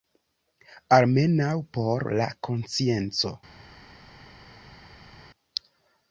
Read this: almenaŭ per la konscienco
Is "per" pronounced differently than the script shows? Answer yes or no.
yes